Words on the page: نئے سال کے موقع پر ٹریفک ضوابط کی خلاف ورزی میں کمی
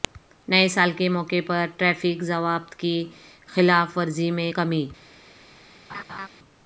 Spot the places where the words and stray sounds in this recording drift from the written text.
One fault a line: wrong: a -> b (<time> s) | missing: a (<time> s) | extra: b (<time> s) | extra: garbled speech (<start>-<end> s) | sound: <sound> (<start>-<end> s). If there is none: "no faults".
sound: laugh (5.9-6.3 s)